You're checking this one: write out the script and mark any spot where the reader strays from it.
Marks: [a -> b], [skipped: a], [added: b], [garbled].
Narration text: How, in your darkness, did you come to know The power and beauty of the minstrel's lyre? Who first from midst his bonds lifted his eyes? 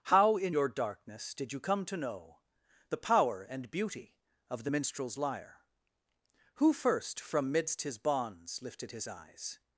How, in your darkness, did you come to know The power and beauty of the minstrel's lyre? Who first from midst his bonds lifted his eyes?